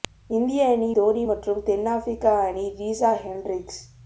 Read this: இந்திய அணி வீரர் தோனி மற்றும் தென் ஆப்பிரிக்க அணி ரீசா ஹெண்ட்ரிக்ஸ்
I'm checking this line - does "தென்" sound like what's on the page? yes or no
yes